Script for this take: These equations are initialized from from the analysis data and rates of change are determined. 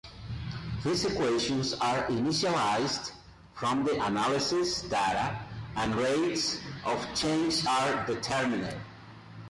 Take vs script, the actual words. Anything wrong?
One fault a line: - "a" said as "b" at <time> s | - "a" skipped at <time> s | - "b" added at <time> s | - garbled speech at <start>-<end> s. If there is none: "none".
- "from" skipped at 3.8 s